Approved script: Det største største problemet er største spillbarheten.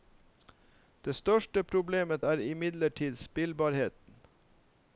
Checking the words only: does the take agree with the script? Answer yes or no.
no